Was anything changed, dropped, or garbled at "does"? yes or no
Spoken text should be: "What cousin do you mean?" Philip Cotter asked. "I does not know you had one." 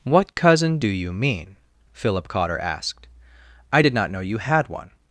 yes